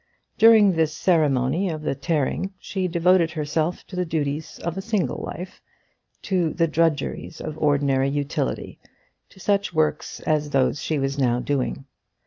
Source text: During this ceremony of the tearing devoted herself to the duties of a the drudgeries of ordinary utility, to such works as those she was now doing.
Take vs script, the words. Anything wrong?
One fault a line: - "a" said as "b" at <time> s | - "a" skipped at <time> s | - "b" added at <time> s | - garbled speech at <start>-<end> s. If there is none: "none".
- "she" added at 2.6 s
- "single life to" added at 4.8 s